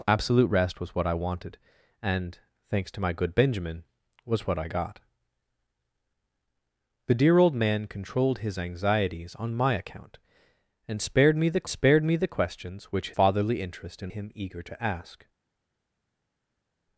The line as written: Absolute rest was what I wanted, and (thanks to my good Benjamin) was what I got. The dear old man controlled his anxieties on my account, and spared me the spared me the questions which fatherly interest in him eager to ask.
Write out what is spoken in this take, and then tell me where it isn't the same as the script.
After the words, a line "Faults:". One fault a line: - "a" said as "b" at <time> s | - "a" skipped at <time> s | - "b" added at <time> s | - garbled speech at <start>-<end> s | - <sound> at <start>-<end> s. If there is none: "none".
Absolute rest was what I wanted, and (thanks to my good Benjamin) was what I got. The dear old man controlled his anxieties on my account, and spared me the spared me the questions which fatherly interest in him eager to ask.
Faults:
none